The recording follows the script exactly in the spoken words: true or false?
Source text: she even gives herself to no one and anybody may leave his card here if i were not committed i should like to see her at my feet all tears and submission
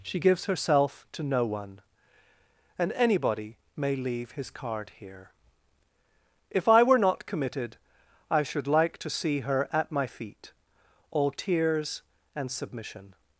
false